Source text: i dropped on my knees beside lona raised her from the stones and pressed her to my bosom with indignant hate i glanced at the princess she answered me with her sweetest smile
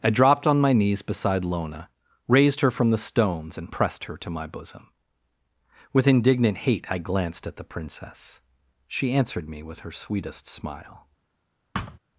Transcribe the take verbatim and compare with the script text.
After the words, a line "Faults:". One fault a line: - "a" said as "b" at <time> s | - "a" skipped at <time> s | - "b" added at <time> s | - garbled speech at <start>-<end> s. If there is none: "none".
i dropped on my knees beside lona raised her from the stones and pressed her to my bosom with indignant hate i glanced at the princess she answered me with her sweetest smile
Faults:
none